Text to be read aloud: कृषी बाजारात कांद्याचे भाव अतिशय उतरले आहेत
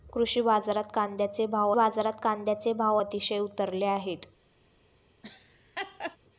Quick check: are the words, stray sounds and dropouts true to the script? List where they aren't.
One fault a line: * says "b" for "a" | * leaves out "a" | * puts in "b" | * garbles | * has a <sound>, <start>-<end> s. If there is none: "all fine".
* puts in "बाजारात कांद्याचे भाव"
* has a laugh, 5.2-6.2 s